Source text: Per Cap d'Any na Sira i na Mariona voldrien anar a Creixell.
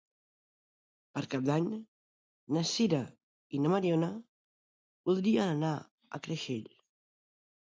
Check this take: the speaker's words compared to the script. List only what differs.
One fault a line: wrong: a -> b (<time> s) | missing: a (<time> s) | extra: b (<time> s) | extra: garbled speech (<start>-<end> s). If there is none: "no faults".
no faults